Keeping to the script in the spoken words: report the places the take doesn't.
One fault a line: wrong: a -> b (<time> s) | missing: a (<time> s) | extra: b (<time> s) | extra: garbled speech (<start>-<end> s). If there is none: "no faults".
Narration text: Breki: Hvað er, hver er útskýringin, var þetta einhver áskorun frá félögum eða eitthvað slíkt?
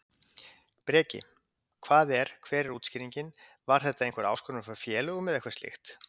no faults